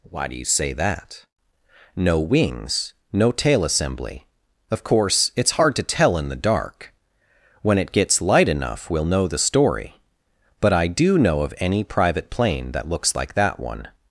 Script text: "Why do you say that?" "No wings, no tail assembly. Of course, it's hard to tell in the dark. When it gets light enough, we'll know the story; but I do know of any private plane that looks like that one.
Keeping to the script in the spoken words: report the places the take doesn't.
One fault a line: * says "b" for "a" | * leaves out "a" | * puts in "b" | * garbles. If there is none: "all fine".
all fine